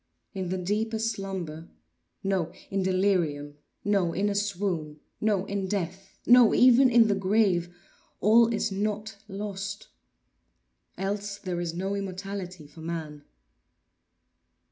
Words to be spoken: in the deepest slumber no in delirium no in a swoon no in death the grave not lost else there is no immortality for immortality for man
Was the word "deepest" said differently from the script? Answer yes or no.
no